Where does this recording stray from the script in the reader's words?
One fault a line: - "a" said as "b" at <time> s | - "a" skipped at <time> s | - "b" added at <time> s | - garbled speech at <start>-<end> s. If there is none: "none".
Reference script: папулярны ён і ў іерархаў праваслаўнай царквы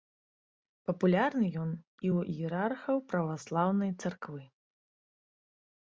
none